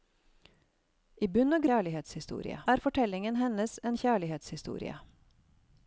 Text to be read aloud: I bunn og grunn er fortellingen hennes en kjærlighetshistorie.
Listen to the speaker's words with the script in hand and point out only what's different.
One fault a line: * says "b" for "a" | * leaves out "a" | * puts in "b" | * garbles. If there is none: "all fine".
* says "kjærlighetshistorie" for "grunn"